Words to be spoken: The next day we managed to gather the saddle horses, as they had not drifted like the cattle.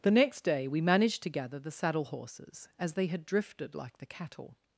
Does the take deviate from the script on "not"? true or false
true